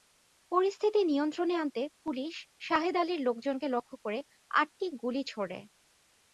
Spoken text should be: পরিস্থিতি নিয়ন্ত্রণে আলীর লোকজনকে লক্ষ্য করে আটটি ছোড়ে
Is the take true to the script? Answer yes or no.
no